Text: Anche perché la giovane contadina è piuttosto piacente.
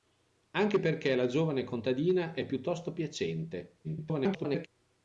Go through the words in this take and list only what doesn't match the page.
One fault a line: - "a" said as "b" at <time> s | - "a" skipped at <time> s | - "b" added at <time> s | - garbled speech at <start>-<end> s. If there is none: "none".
- garbled speech at 3.8-4.7 s